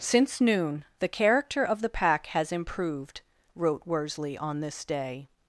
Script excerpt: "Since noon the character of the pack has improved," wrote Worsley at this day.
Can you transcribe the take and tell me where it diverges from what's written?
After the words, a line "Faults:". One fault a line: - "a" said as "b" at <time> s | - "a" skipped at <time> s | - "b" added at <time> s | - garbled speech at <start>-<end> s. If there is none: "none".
"Since noon the character of the pack has improved," wrote Worsley on this day.
Faults:
- "at" said as "on" at 4.4 s